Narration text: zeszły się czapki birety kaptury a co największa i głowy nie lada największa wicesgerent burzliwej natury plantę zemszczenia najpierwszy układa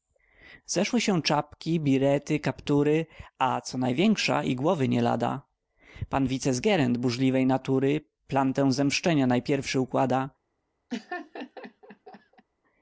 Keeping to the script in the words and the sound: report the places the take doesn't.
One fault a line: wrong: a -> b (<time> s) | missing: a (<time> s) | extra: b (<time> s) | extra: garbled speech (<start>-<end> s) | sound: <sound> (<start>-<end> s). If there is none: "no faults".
wrong: największa -> pan (6.1 s)
sound: laugh (10.9-12.4 s)